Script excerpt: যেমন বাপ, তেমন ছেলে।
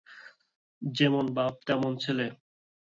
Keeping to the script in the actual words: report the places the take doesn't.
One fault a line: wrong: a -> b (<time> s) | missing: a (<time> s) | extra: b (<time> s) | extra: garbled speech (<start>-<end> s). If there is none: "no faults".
no faults